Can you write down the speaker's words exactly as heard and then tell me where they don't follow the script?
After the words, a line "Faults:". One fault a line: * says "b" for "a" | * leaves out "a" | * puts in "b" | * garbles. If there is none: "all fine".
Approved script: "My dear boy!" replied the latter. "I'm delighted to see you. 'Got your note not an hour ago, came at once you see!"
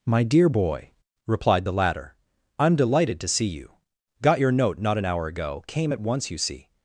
"My dear boy!" replied the latter. "I'm delighted to see you. 'Got your note not an hour ago, came at once you see!"
Faults:
all fine